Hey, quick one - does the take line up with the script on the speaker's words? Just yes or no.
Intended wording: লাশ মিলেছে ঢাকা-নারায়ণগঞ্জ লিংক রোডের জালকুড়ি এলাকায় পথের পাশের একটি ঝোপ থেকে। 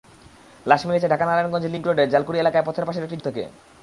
no